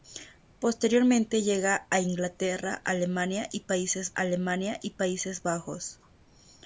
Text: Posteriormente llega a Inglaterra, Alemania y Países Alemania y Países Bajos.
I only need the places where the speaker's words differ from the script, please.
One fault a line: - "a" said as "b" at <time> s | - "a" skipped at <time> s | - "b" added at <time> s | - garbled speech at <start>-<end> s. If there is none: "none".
none